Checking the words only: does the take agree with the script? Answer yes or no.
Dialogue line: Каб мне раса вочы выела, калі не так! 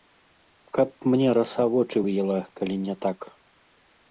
yes